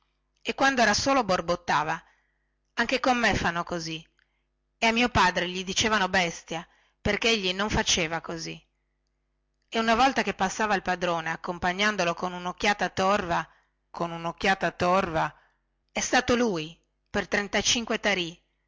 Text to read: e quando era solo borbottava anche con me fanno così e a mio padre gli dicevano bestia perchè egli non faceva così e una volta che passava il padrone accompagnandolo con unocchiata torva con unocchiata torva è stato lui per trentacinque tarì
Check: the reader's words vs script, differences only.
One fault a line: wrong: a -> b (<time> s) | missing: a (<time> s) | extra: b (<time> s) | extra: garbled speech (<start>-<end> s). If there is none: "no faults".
no faults